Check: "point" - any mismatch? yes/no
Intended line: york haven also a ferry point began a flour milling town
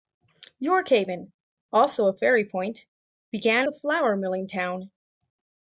no